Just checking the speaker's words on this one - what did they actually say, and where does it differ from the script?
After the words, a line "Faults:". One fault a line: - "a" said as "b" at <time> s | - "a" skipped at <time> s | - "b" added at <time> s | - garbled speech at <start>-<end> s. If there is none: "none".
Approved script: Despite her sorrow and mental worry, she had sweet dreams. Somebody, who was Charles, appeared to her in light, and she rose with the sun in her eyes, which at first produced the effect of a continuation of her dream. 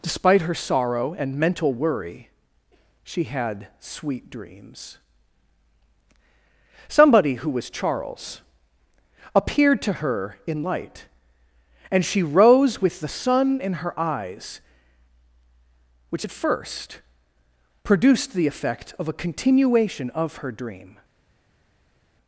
Despite her sorrow and mental worry, she had sweet dreams. Somebody, who was Charles, appeared to her in light, and she rose with the sun in her eyes, which at first produced the effect of a continuation of her dream.
Faults:
none